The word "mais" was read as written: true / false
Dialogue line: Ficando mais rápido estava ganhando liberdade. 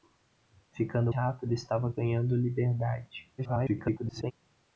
false